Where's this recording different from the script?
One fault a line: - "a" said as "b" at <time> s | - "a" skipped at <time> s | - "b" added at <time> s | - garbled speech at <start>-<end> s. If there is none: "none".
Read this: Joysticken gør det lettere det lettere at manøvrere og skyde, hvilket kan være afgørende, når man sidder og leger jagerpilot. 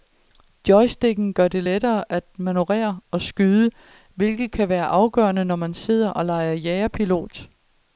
- "det lettere" skipped at 2.1 s